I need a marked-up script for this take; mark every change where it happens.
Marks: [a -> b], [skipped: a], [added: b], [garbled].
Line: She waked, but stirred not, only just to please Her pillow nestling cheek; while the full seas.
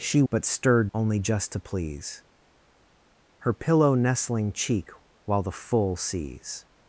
She [skipped: waked,] but stirred [skipped: not,] only just to please Her pillow nestling cheek; while the full seas.